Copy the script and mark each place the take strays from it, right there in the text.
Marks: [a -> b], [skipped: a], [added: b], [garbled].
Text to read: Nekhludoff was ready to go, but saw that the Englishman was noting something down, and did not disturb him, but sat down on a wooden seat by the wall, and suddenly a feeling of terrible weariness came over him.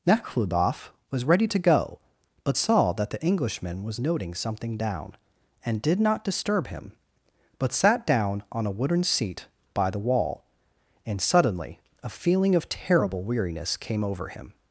Nekhludoff was ready to go, but saw that the Englishman was noting something down, and did not disturb him, but sat down on a wooden seat by the wall, and suddenly a feeling of terrible weariness came over him.